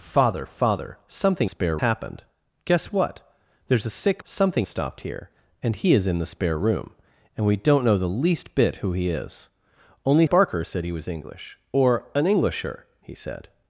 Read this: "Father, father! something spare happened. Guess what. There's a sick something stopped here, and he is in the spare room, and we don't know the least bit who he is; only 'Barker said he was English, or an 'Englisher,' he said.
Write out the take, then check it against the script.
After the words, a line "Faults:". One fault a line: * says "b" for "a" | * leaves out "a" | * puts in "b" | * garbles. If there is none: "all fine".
"Father, father! something spare happened. Guess what. There's a sick something stopped here, and he is in the spare room, and we don't know the least bit who he is; only 'Barker said he was English, or an 'Englisher,' he said.
Faults:
all fine